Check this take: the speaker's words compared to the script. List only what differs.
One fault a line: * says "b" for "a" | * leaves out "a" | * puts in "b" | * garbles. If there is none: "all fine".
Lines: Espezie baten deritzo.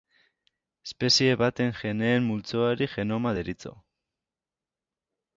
* puts in "geneen multzoari genoma"